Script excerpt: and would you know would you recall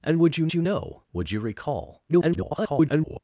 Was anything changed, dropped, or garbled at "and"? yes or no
no